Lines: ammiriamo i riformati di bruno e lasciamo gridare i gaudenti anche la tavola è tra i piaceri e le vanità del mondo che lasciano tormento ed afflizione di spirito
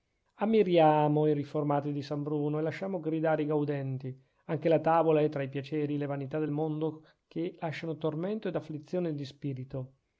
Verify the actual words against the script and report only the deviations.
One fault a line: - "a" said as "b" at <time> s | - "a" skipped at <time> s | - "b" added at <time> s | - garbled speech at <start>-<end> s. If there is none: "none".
- "san" added at 2.0 s